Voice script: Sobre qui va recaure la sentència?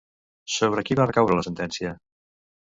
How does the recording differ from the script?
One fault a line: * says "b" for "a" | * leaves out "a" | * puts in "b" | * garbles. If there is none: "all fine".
all fine